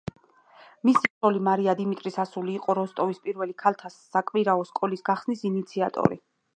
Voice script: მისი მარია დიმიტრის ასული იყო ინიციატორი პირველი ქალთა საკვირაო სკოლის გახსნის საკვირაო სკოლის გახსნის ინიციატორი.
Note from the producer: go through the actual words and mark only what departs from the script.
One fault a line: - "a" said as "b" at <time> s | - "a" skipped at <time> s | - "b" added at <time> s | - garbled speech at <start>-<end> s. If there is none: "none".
- "ცოლი" added at 1.1 s
- "ინიციატორი" said as "როსტოვის" at 2.8 s
- "საკვირაო სკოლის გახსნის" skipped at 5.5 s